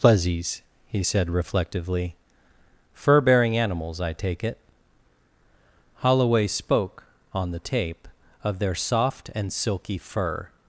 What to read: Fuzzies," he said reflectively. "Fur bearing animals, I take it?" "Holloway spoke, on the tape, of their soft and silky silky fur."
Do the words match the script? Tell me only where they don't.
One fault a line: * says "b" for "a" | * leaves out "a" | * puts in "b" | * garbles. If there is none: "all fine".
* leaves out "silky"